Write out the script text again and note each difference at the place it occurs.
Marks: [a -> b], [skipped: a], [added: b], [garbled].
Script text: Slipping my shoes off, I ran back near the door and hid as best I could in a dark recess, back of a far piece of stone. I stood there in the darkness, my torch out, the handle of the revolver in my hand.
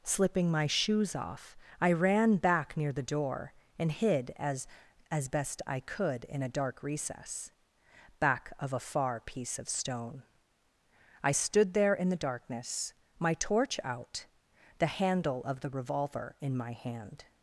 Slipping my shoes off, I ran back near the door and hid as [added: as] best I could in a dark recess, back of a far piece of stone. I stood there in the darkness, my torch out, the handle of the revolver in my hand.